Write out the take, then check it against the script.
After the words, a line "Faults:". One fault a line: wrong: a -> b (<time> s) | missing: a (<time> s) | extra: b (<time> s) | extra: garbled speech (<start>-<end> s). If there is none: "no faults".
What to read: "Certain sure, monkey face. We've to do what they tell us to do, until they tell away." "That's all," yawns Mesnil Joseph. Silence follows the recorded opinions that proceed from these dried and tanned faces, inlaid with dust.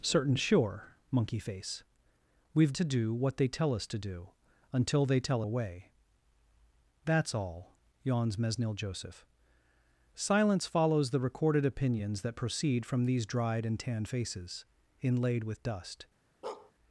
"Certain sure, monkey face. We've to do what they tell us to do, until they tell away." "That's all," yawns Mesnil Joseph. Silence follows the recorded opinions that proceed from these dried and tanned faces, inlaid with dust.
Faults:
no faults